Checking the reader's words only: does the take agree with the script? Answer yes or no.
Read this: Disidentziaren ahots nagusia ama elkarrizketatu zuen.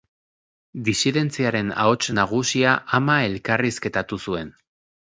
yes